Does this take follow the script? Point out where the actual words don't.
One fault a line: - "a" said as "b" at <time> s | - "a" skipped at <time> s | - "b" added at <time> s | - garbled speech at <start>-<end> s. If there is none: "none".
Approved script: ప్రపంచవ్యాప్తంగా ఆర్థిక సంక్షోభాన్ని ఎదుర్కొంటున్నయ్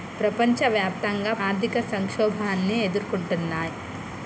none